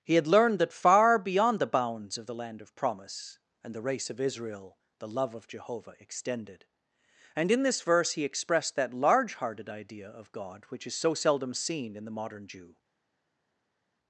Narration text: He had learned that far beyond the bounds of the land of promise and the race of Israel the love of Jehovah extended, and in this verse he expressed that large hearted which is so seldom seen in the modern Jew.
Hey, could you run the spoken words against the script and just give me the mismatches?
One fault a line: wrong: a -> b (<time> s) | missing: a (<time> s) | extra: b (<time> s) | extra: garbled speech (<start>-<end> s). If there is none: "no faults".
extra: idea of God (9.7 s)